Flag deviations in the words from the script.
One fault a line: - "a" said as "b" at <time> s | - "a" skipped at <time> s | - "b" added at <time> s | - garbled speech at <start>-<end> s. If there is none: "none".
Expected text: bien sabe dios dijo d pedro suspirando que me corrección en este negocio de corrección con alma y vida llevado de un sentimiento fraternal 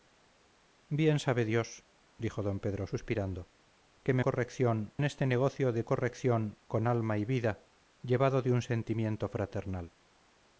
none